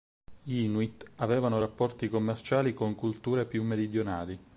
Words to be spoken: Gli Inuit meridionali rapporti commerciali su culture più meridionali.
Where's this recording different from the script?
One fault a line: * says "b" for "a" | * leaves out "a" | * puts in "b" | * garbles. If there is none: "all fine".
* says "avevano" for "meridionali"
* says "con" for "su"